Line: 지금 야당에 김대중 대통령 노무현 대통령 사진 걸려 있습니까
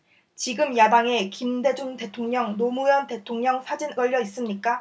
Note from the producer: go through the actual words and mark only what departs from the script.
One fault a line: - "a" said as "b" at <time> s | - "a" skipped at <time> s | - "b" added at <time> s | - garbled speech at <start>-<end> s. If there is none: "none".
none